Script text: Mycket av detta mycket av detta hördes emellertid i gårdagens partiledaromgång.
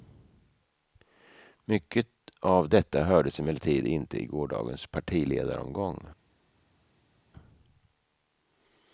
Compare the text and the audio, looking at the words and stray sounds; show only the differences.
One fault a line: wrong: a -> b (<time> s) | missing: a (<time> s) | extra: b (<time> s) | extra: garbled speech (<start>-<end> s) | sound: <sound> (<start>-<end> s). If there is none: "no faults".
missing: mycket av detta (3.0 s)
extra: inte (3.9 s)